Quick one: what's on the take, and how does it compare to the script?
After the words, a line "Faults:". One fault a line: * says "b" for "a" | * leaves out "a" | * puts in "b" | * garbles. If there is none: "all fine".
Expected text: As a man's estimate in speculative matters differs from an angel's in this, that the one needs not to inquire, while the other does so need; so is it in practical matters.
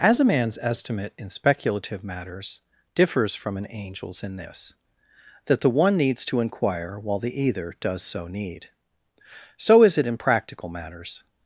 As a man's estimate in speculative matters differs from an angel's in this, that the one needs to inquire, while the either does so need; so is it in practical matters.
Faults:
* leaves out "not"
* says "either" for "other"